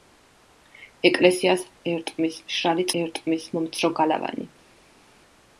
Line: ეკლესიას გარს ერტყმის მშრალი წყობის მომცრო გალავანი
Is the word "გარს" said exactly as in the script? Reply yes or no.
no